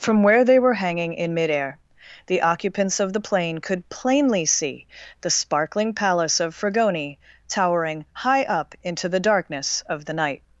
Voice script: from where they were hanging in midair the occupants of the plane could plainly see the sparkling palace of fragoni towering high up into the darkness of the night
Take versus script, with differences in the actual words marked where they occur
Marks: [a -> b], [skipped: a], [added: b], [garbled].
from where they were hanging in midair the occupants of the plane could plainly see the sparkling palace of fragoni towering high up into the darkness of the night